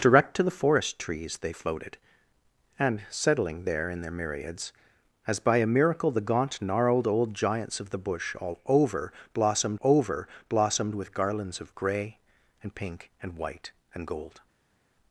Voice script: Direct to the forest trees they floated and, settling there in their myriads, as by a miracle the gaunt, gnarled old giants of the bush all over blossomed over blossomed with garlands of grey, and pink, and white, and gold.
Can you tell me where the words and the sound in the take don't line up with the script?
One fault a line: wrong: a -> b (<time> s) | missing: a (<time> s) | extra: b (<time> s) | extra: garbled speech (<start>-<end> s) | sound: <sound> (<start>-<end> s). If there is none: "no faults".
no faults